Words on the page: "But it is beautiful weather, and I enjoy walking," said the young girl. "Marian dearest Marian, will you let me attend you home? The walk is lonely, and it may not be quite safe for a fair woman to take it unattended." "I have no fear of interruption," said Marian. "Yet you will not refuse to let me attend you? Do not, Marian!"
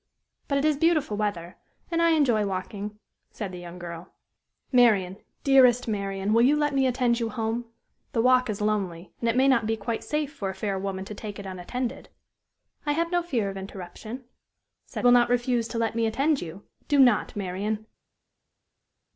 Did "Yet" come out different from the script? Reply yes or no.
yes